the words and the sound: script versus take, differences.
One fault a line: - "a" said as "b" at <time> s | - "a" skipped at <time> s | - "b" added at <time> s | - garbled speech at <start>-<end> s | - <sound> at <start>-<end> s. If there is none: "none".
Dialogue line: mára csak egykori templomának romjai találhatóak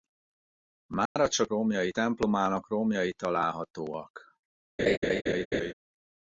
- dropout at 1.1-1.2 s
- "egykori" said as "romjai" at 1.5 s
- laugh at 4.8-5.7 s